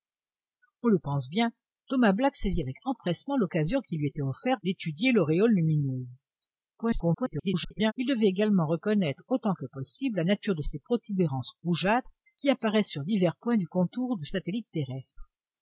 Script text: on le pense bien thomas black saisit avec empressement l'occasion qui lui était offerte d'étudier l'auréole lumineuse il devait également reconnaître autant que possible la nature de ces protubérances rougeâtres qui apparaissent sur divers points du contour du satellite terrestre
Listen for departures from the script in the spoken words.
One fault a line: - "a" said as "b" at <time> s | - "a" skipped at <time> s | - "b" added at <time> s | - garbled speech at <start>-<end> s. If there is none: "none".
- garbled speech at 6.8-7.9 s